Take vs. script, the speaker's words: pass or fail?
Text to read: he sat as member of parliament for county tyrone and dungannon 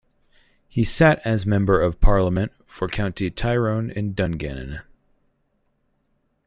pass